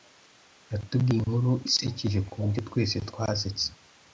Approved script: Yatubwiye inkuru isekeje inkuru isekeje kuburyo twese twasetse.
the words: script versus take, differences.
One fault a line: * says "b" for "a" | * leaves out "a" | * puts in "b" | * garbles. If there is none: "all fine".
* leaves out "inkuru isekeje"